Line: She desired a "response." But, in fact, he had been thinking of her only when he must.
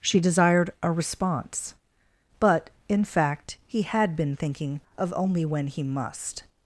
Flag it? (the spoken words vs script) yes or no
yes